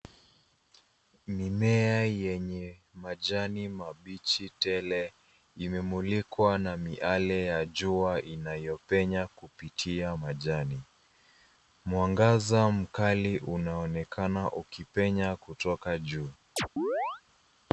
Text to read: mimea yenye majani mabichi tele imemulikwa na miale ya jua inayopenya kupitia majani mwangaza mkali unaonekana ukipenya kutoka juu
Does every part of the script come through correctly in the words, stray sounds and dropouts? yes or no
no